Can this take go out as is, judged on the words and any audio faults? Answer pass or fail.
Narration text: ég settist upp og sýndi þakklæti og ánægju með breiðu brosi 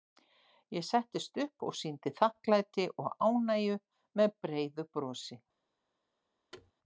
fail